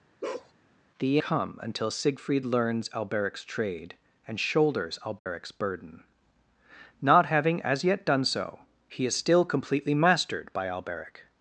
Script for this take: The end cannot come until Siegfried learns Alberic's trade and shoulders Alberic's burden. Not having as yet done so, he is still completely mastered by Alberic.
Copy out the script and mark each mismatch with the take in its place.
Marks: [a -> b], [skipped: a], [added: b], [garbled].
The [skipped: end cannot] come until Siegfried learns Alberic's trade and shoulders Alberic's burden. Not having as yet done so, he is still completely mastered by Alberic.